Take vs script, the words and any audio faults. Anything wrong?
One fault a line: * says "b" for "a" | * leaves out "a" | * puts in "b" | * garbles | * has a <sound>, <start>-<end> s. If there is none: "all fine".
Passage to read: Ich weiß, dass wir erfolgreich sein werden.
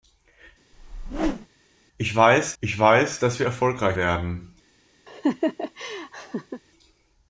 * has a whoosh, 0.7-1.5 s
* puts in "ich weiß"
* leaves out "sein"
* has a laugh, 5.1-6.6 s